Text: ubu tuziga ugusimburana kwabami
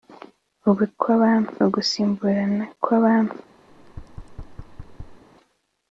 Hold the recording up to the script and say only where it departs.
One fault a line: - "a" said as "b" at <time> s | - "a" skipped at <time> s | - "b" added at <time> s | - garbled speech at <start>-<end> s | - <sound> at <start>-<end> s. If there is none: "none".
- "tuziga" said as "kwabami" at 1.0 s
- thud at 3.7-5.2 s